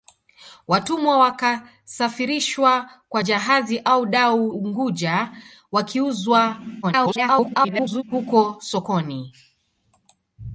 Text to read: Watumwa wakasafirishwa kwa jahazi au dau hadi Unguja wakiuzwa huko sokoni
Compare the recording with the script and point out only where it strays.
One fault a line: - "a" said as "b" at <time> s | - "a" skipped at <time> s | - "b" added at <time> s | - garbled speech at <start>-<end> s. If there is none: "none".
- "hadi" skipped at 4.5 s
- garbled speech at 6.8-8.0 s